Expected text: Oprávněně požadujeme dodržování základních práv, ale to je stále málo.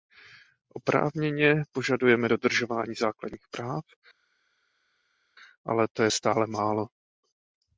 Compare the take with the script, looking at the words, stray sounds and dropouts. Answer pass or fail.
pass